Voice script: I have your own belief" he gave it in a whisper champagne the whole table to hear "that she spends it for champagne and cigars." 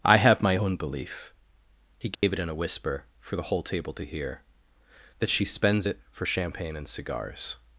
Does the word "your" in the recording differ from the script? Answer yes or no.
yes